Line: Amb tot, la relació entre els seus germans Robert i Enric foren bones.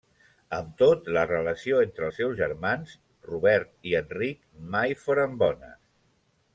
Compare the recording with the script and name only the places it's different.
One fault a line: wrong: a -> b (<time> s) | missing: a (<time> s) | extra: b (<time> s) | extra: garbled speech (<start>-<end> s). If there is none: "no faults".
extra: mai (4.8 s)